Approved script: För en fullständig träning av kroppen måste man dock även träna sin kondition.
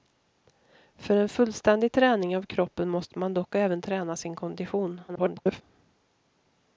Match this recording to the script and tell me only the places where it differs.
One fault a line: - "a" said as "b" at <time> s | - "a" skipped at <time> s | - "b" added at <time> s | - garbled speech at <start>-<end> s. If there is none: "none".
- garbled speech at 5.1-5.6 s